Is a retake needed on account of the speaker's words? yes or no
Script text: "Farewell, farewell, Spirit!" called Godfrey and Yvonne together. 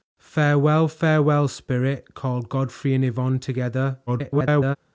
yes